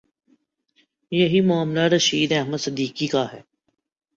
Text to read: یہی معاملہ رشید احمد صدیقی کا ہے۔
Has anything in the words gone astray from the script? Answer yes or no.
no